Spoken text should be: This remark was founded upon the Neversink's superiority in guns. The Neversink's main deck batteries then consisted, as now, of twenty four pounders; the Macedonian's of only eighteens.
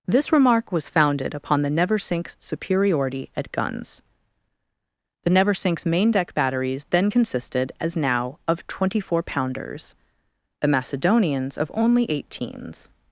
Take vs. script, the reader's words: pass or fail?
fail